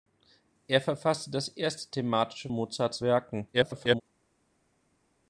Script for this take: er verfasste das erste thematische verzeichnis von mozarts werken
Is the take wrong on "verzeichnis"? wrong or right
wrong